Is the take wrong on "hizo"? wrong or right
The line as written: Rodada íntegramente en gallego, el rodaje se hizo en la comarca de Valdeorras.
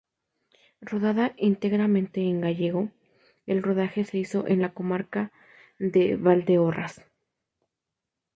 right